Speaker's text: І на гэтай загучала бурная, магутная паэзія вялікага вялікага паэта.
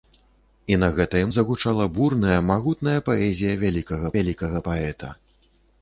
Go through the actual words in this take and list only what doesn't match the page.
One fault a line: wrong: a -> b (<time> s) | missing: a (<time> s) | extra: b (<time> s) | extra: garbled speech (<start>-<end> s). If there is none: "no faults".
no faults